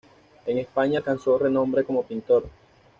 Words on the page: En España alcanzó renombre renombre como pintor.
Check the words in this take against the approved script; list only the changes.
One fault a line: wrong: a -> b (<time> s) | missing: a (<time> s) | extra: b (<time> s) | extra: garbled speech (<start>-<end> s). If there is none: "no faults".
missing: renombre (1.8 s)